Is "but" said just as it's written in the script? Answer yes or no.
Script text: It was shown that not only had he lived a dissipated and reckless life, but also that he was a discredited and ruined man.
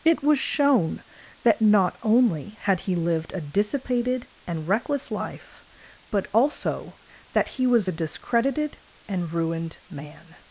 yes